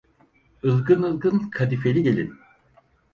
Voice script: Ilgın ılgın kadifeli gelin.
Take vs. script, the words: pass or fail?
pass